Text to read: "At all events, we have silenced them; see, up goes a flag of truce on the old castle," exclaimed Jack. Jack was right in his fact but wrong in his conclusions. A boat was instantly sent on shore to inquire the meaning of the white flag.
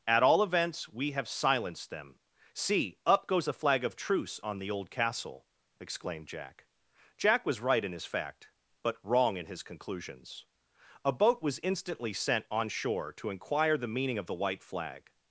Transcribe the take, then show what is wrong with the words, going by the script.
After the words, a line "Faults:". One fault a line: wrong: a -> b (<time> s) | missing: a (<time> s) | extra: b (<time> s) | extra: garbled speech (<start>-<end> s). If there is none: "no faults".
"At all events, we have silenced them; see, up goes a flag of truce on the old castle," exclaimed Jack. Jack was right in his fact but wrong in his conclusions. A boat was instantly sent on shore to inquire the meaning of the white flag.
Faults:
no faults